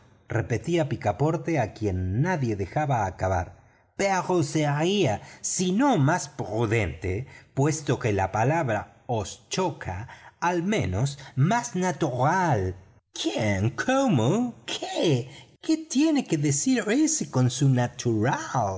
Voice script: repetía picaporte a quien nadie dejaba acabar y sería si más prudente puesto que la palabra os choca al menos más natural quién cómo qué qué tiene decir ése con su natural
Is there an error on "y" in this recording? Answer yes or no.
yes